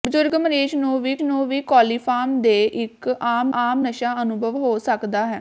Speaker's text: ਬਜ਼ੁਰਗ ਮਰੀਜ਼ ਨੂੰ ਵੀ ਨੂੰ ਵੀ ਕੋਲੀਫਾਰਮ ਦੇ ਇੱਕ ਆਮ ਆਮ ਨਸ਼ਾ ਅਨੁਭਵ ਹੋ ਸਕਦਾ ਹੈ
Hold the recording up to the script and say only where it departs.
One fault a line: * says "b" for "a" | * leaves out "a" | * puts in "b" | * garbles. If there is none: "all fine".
all fine